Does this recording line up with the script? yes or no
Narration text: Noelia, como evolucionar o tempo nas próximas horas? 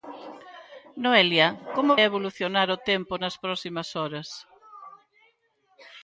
yes